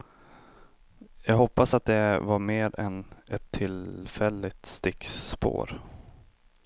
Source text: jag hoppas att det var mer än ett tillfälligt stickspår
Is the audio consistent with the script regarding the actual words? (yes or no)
yes